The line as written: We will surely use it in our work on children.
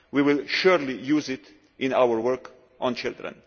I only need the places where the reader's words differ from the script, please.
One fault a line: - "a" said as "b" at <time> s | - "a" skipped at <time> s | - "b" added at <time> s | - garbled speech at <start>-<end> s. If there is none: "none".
none